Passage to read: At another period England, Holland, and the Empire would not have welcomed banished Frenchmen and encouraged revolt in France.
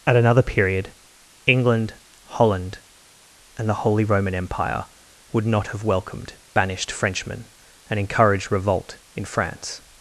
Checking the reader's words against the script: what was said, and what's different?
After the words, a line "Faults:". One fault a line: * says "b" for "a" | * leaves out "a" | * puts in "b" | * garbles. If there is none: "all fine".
At another period England, Holland, and the Holy Roman Empire would not have welcomed banished Frenchmen and encouraged revolt in France.
Faults:
* puts in "Holy Roman"